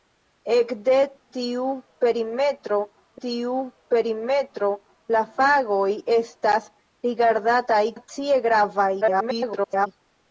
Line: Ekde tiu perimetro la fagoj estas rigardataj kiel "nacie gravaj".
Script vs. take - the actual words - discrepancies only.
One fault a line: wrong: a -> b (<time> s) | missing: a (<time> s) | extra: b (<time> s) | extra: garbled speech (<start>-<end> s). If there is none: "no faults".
extra: tiu perimetro (3.3 s)
missing: kiel (7.9 s)
extra: garbled speech (9.0-9.9 s)